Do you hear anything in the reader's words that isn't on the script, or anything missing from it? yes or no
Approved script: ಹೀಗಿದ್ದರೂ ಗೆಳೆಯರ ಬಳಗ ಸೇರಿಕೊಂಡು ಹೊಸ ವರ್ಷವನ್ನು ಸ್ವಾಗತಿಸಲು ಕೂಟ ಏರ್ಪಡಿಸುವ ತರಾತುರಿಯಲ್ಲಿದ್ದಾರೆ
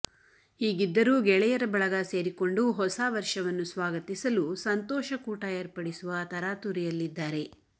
yes